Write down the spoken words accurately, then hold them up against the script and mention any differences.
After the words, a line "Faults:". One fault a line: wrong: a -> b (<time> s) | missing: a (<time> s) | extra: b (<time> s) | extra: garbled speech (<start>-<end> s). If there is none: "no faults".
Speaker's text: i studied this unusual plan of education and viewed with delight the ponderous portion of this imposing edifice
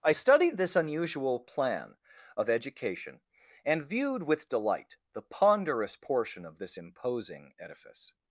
i studied this unusual plan of education and viewed with delight the ponderous portion of this imposing edifice
Faults:
no faults